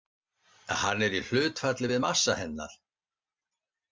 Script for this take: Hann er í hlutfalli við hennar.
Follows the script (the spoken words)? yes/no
no